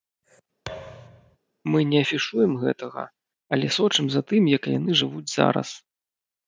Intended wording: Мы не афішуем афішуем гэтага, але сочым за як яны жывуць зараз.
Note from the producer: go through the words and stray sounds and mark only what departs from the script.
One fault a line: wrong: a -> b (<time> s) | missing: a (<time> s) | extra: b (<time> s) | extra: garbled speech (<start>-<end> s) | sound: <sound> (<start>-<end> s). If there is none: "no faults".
sound: thud (0.7-1.4 s)
missing: афішуем (2.5 s)
extra: тым (4.3 s)